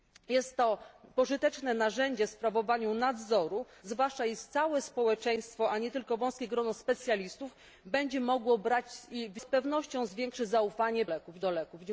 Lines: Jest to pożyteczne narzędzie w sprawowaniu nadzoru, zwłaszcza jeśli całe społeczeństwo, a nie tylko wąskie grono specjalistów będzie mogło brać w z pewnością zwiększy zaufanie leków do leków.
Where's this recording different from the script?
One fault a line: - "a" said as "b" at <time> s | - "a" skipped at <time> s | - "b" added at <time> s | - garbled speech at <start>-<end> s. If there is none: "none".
none